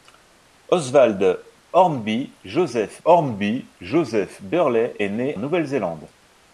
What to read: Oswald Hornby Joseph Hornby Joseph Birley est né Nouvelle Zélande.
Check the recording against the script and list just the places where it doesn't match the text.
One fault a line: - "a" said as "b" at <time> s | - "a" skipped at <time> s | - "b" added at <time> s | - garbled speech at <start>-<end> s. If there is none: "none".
none